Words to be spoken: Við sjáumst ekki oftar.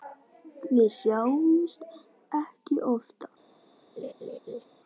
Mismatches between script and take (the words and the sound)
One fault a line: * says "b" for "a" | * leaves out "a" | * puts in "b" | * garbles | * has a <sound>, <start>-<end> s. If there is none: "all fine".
* has a laugh, 4.0-4.6 s